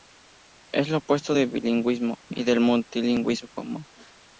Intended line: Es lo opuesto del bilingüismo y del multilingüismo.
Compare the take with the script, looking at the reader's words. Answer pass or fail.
pass